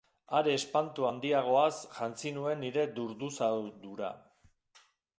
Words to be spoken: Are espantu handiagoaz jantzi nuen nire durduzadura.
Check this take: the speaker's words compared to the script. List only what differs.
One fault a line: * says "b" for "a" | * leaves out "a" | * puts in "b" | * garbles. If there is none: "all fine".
all fine